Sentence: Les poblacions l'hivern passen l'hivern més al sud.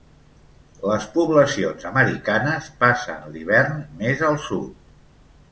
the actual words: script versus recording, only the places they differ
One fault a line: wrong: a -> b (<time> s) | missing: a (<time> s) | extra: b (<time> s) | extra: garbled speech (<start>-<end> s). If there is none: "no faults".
wrong: l'hivern -> americanes (1.9 s)